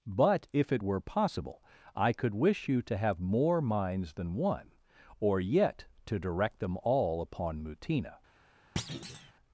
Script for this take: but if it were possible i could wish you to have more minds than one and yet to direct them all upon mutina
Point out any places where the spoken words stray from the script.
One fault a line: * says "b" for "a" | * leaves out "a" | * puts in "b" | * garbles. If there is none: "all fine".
* says "or" for "and"